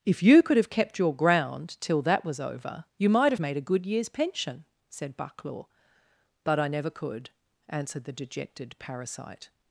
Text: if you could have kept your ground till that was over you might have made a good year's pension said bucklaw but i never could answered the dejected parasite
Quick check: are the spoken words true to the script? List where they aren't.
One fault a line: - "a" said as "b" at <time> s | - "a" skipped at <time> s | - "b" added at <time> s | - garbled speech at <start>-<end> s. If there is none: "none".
none